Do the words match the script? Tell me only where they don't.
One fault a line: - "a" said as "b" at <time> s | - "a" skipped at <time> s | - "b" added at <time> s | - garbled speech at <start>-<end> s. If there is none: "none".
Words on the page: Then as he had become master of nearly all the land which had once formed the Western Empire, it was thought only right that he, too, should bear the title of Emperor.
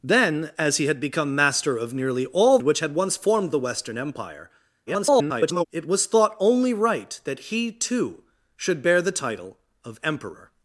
- "the land" skipped at 2.6 s
- garbled speech at 4.9-5.7 s